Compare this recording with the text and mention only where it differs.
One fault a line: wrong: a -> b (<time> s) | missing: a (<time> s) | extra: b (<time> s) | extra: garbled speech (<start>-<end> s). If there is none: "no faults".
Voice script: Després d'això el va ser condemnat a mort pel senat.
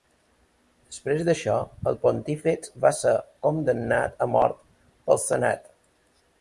extra: pontífex (2.1 s)